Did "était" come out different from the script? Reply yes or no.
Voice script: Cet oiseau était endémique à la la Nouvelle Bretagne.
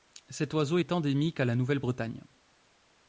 yes